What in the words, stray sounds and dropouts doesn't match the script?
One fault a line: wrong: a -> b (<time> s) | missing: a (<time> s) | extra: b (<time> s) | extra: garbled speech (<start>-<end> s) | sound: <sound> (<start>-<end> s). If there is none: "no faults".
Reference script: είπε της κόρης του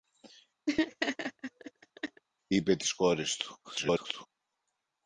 sound: laugh (0.7-2.2 s)
extra: garbled speech (3.6-4.3 s)